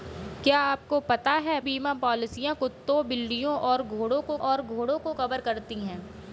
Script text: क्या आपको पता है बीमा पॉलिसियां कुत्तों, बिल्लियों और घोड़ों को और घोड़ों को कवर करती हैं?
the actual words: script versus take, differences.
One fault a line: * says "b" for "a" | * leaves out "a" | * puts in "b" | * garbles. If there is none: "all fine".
all fine